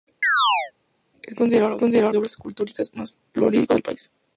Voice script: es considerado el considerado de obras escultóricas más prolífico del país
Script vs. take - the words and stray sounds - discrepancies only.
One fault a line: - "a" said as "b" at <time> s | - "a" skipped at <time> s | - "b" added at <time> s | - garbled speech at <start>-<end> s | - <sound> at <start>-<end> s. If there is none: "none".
- chirp at 0.2-0.7 s